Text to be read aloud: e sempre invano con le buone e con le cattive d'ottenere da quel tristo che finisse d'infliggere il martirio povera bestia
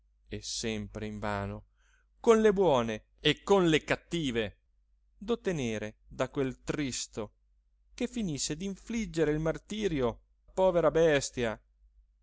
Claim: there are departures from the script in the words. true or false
false